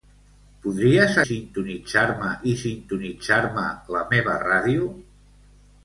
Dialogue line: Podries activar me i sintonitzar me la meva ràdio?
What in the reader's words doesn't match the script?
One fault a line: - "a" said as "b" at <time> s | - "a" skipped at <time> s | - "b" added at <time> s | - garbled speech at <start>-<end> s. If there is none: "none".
- "activar" said as "sintonitzar" at 1.3 s